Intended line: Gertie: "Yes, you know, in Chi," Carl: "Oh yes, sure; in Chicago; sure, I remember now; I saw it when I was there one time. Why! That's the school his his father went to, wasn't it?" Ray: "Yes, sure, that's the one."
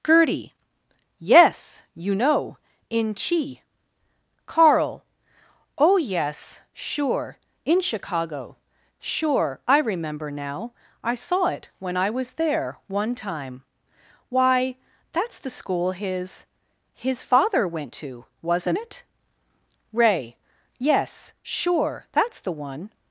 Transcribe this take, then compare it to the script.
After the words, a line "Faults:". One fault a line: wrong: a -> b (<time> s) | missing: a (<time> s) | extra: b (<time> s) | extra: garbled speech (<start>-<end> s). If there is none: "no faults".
Gertie: "Yes, you know, in Chi," Carl: "Oh yes, sure; in Chicago; sure, I remember now; I saw it when I was there one time. Why! That's the school his his father went to, wasn't it?" Ray: "Yes, sure, that's the one."
Faults:
no faults